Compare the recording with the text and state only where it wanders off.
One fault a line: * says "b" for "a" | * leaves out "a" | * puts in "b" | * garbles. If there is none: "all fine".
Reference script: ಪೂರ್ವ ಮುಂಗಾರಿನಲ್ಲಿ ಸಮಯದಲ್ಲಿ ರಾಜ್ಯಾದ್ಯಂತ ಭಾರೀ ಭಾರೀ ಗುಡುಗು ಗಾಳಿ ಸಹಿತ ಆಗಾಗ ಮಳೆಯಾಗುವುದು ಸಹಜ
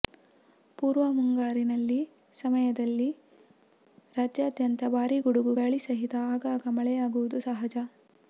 * leaves out "ಭಾರೀ"